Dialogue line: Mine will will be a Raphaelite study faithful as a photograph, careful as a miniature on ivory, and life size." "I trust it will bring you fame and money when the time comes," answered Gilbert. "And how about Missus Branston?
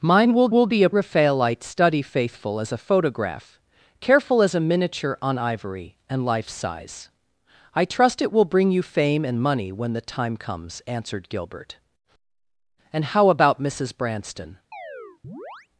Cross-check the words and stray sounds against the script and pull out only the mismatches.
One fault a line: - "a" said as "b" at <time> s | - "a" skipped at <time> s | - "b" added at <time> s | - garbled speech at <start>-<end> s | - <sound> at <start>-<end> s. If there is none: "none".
- chirp at 14.7-15.7 s